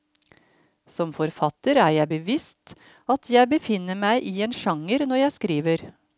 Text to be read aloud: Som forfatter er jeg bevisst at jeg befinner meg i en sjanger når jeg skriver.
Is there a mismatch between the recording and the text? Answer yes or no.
no